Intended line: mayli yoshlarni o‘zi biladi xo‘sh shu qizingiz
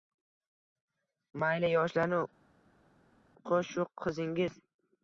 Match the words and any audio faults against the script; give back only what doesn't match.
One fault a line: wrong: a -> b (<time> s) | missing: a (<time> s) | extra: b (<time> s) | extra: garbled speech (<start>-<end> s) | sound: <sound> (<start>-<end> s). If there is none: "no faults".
missing: o‘zi biladi (2.2 s)